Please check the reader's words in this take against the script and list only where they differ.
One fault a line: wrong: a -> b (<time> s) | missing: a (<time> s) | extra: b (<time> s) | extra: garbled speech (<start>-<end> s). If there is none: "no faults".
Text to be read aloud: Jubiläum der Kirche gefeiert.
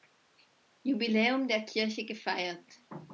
no faults